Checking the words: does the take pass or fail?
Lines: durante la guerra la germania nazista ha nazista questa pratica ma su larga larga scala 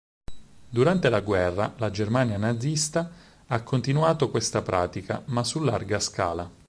fail